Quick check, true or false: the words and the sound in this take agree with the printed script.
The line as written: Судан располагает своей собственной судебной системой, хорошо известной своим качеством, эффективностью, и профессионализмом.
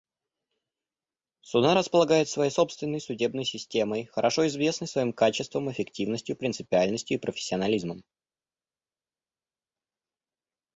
false